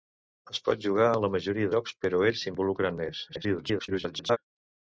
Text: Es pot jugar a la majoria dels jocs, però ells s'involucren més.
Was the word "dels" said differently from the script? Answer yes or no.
yes